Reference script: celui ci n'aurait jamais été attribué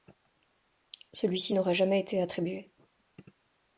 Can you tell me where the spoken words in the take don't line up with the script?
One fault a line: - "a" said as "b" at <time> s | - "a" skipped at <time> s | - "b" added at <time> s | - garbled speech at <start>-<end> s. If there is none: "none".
none